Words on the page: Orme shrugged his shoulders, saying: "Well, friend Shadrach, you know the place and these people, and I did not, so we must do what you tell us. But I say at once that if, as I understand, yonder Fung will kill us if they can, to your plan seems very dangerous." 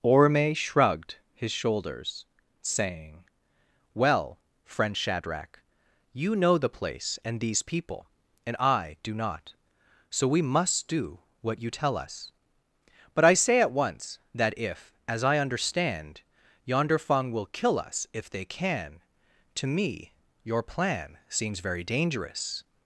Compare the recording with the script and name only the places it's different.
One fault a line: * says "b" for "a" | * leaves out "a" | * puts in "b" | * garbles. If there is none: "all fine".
* says "do" for "did"
* puts in "me"